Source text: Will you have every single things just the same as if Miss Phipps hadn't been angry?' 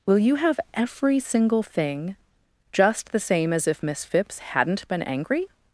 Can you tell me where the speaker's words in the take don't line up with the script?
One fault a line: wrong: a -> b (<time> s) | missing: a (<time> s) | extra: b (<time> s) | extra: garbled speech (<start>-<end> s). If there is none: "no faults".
wrong: things -> thing (1.6 s)